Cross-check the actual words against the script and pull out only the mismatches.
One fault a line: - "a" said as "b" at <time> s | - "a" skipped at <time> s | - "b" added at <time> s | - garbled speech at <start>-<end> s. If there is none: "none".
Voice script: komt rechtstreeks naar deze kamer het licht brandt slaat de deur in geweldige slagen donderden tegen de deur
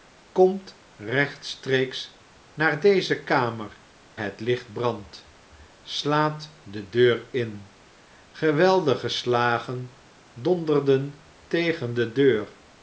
none